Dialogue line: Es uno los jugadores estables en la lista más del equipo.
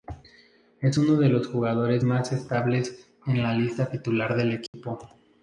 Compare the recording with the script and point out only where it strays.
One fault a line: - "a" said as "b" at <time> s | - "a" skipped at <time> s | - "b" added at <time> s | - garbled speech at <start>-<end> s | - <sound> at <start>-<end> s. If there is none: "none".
- "de" added at 1.2 s
- "más" added at 2.0 s
- "más" said as "titular" at 3.9 s
- dropout at 4.7-4.7 s